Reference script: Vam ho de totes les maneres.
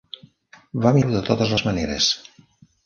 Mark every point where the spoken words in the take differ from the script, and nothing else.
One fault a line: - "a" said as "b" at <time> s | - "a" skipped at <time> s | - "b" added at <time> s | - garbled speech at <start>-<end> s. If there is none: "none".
none